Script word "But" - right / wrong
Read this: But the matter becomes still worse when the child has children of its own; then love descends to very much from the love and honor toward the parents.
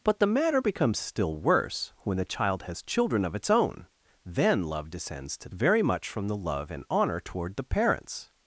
right